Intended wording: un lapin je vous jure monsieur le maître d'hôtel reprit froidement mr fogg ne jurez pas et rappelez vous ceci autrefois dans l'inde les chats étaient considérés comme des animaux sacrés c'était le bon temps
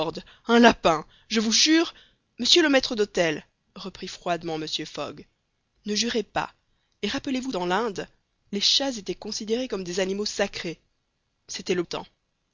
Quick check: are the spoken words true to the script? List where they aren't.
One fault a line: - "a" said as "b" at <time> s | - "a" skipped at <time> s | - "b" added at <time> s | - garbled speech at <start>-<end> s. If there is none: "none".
- "ceci autrefois" skipped at 7.5 s
- "bon" skipped at 11.8 s